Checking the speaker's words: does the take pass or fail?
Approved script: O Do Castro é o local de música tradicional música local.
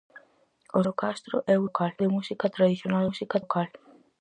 pass